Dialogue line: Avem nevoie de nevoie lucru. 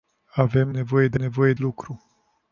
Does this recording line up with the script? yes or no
yes